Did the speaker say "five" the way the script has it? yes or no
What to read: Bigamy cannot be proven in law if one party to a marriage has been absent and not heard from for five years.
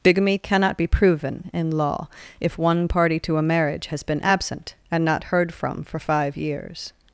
yes